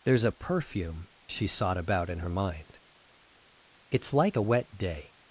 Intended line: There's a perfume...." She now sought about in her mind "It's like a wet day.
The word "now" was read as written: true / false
false